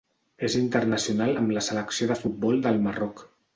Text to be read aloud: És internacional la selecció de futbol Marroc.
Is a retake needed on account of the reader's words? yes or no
yes